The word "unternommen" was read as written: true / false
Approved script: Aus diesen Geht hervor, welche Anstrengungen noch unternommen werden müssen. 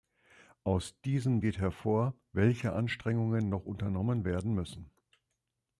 true